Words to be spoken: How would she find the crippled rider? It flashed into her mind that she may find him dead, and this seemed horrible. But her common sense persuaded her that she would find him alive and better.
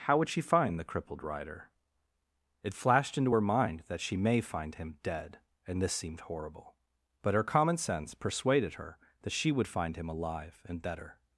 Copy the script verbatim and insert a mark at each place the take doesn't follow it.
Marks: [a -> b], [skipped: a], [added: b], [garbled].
How would she find the crippled rider? It flashed into her mind that she may find him dead, and this seemed horrible. But her common sense persuaded her that she would find him alive and better.